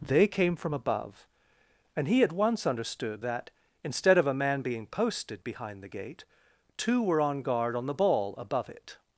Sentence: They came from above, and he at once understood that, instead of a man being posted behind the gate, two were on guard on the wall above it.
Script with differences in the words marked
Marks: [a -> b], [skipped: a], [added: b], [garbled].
They came from above, and he at once understood that, instead of a man being posted behind the gate, two were on guard on the [wall -> ball] above it.